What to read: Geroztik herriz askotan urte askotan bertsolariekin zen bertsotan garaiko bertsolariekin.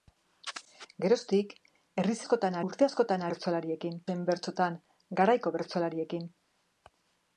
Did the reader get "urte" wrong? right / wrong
right